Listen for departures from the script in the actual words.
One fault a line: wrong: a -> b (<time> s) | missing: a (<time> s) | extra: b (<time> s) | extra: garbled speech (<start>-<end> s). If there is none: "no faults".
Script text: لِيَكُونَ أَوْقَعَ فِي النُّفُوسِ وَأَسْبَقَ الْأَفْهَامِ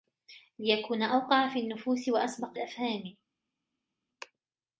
no faults